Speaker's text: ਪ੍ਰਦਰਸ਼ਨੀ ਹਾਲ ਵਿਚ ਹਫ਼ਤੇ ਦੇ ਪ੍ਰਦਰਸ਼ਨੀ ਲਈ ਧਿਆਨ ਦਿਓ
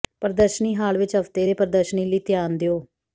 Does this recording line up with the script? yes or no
yes